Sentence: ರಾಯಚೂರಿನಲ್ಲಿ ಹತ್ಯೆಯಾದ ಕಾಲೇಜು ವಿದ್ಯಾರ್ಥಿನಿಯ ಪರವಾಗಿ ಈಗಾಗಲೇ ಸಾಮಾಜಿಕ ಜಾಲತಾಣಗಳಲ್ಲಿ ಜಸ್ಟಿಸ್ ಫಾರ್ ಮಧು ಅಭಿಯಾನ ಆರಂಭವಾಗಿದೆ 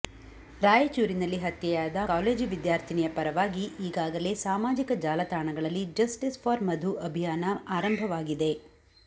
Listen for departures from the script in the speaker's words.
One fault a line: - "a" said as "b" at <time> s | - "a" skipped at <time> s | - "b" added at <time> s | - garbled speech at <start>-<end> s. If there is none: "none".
none